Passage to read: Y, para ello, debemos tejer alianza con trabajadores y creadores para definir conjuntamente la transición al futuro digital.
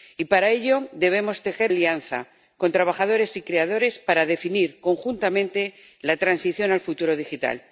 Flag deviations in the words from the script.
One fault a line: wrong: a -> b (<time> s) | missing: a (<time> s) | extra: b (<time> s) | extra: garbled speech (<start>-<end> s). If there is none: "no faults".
no faults